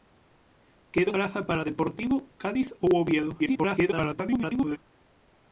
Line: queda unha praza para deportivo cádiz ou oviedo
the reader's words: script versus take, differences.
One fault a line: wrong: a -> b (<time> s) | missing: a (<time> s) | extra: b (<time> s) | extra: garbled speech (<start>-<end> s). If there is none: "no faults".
missing: unha (1.1 s)
extra: garbled speech (3.4-4.8 s)